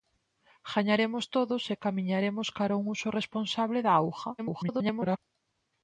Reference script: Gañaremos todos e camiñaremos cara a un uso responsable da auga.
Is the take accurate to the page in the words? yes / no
no